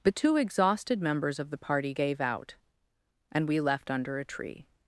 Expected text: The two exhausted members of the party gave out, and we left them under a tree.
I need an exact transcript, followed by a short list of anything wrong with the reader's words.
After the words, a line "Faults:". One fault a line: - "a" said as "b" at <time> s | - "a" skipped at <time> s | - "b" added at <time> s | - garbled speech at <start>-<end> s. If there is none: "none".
The two exhausted members of the party gave out, and we left under a tree.
Faults:
- "them" skipped at 3.9 s